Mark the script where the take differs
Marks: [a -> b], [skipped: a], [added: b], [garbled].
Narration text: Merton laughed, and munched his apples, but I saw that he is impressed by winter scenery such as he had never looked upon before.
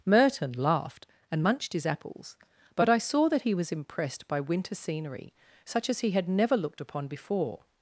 Merton laughed, and munched his apples, but I saw that he [is -> was] impressed by winter scenery such as he had never looked upon before.